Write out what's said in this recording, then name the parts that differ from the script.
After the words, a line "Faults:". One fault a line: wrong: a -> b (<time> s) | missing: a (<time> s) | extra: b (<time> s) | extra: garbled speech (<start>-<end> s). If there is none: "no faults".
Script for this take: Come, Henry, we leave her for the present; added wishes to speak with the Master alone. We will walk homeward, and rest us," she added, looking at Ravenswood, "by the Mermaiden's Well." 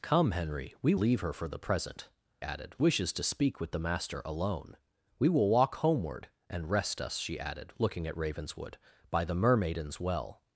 Come, Henry, we leave her for the present; added wishes to speak with the Master alone. We will walk homeward, and rest us," she added, looking at Ravenswood, "by the Mermaiden's Well."
Faults:
no faults